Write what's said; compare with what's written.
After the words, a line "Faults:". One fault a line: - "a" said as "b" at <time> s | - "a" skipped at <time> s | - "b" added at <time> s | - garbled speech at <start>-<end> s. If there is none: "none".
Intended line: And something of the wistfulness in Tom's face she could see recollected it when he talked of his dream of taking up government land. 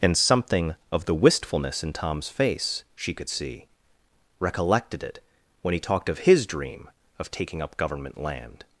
And something of the wistfulness in Tom's face she could see recollected it when he talked of his dream of taking up government land.
Faults:
none